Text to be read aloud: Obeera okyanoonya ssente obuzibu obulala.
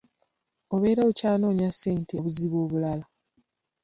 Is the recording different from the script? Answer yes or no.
no